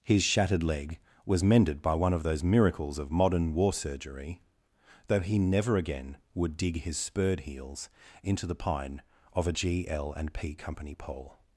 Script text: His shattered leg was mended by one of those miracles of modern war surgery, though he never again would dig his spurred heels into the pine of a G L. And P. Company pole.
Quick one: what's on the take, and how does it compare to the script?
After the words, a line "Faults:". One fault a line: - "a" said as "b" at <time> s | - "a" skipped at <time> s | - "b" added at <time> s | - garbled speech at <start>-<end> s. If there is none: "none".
His shattered leg was mended by one of those miracles of modern war surgery, though he never again would dig his spurred heels into the pine of a G L. And P. Company pole.
Faults:
none